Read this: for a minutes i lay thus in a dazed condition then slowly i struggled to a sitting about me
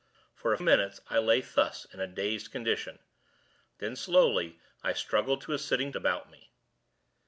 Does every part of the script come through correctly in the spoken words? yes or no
yes